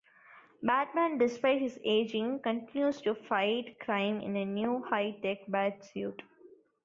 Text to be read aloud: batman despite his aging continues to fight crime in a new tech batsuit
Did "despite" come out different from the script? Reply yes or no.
no